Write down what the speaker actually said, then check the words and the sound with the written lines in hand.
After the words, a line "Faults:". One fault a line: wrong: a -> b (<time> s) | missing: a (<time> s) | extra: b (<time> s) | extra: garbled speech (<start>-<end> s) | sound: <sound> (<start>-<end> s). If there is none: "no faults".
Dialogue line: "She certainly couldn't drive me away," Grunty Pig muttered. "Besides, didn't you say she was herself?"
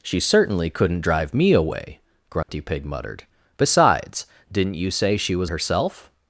"She certainly couldn't drive me away," Grunty Pig muttered. "Besides, didn't you say she was herself?"
Faults:
sound: dropout (2.4-2.5 s)